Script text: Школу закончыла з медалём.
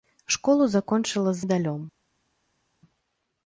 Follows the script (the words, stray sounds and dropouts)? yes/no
yes